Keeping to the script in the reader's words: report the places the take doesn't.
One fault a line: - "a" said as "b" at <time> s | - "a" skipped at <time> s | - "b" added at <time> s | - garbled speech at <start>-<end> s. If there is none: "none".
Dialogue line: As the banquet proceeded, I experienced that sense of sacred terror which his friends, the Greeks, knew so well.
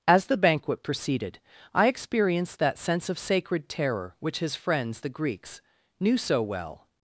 none